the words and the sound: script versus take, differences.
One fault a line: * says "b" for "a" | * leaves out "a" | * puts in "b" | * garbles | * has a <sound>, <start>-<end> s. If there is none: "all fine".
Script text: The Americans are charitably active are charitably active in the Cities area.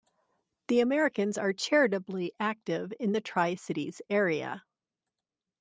* leaves out "are charitably active"
* puts in "Tri"